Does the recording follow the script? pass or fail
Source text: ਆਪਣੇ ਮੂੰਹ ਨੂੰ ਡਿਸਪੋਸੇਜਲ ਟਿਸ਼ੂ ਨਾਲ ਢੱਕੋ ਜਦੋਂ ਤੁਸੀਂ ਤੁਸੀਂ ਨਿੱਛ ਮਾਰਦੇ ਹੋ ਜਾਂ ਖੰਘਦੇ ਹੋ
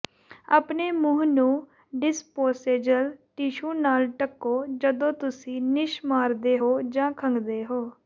fail